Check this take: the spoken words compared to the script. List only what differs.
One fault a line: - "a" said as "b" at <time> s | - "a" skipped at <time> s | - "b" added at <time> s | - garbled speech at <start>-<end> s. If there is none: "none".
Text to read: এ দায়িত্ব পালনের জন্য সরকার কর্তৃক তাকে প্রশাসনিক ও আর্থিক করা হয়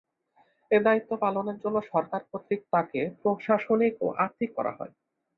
none